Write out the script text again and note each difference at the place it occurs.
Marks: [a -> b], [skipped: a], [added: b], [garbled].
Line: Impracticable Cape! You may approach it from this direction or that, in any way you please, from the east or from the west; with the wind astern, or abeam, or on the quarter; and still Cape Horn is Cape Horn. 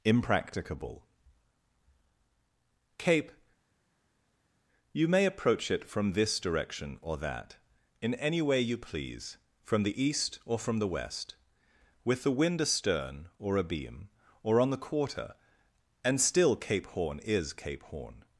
Impracticable Cape! You may approach it from this direction or that, in any way you please, from the east or from the west; with the wind astern, or abeam, or on the quarter; and still Cape Horn is Cape Horn.